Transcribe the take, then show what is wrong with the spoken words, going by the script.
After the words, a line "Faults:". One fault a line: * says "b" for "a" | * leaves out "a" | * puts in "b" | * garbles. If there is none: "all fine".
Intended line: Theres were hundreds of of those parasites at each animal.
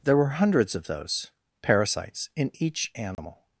There were hundreds of those parasites in each animal.
Faults:
* says "There" for "Theres"
* leaves out "of"
* says "in" for "at"